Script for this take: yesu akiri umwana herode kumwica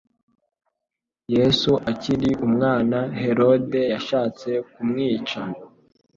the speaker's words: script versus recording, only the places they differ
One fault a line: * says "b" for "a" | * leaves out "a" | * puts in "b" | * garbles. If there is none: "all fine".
* puts in "yashatse"